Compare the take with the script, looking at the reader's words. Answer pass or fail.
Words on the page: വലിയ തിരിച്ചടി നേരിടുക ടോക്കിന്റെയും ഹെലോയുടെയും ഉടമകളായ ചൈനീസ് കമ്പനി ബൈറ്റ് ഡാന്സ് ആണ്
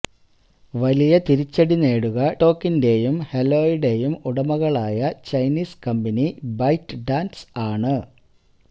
pass